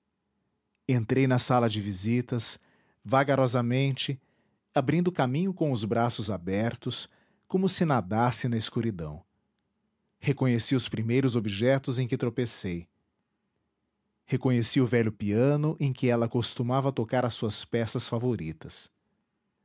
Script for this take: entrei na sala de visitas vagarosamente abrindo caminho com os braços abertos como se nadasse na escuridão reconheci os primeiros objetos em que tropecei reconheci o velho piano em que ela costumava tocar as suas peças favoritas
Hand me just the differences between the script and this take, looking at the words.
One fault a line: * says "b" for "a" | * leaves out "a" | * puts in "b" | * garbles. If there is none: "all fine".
all fine